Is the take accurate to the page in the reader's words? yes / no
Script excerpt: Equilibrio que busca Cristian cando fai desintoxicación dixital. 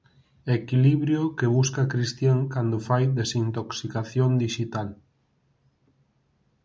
yes